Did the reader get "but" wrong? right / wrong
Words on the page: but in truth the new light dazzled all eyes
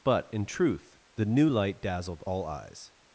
right